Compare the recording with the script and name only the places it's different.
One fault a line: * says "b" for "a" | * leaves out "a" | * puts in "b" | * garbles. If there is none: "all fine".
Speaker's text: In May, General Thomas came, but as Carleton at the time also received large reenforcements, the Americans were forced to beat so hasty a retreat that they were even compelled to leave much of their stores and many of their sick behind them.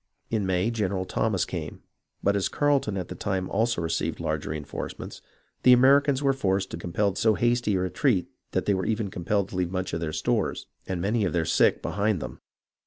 * says "compelled" for "beat"